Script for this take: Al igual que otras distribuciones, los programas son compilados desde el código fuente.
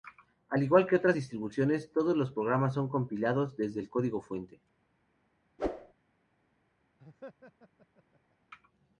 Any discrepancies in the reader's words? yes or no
yes